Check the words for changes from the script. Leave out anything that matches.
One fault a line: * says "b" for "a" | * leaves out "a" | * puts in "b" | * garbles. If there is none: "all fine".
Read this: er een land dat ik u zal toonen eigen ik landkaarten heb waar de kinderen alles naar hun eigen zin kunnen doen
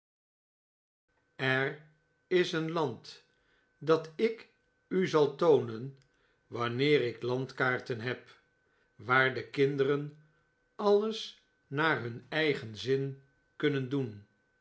* puts in "is"
* says "wanneer" for "eigen"